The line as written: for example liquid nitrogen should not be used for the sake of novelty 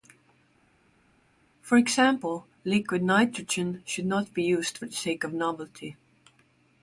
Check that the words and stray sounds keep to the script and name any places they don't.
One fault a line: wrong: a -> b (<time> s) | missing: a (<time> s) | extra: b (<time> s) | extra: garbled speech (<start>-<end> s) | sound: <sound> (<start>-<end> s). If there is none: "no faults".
no faults